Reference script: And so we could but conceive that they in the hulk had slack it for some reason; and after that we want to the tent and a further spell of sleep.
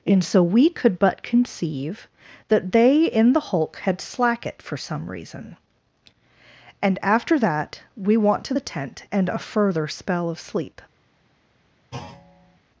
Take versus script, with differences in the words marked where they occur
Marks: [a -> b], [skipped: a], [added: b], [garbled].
And so we could but conceive that they in the hulk had slack it for some reason; and after that we want to the tent and a further spell of sleep.